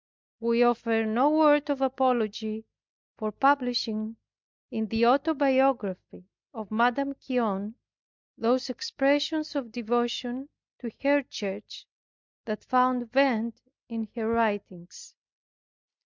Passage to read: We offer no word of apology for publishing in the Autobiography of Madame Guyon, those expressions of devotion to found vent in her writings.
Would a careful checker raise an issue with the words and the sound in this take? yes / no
yes